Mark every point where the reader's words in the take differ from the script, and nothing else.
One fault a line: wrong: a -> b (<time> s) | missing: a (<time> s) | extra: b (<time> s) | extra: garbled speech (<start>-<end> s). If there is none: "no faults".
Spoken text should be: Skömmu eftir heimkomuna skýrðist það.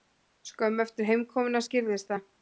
no faults